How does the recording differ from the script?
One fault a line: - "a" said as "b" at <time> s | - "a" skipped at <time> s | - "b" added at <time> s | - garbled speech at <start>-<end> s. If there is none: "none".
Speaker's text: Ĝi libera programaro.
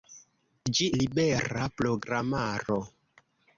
none